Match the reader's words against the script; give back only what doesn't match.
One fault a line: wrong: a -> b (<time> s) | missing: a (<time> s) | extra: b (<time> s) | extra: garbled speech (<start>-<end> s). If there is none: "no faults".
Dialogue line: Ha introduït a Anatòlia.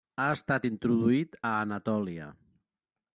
extra: estat (0.3 s)